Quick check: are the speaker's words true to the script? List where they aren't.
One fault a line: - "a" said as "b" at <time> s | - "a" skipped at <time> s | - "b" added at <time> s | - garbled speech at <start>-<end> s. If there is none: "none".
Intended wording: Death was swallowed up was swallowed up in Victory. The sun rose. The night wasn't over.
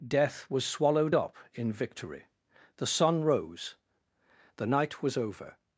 - "was swallowed up" skipped at 1.3 s
- "wasn't" said as "was" at 5.0 s